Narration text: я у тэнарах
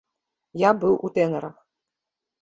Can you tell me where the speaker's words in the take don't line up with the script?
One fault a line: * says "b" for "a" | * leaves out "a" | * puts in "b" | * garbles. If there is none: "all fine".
* puts in "быў"